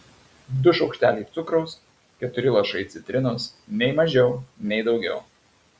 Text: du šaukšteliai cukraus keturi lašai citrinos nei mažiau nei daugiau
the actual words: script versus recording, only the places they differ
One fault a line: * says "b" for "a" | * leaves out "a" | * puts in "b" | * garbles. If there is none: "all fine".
all fine